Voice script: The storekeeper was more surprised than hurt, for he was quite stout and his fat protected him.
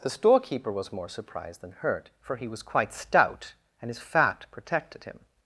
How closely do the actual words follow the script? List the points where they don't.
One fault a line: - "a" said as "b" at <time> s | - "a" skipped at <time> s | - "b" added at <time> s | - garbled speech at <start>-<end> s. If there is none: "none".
none